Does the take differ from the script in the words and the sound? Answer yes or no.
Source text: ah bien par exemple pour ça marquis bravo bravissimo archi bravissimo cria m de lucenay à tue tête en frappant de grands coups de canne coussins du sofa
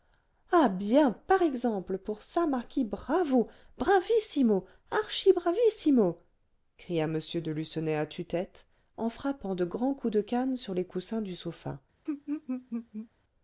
yes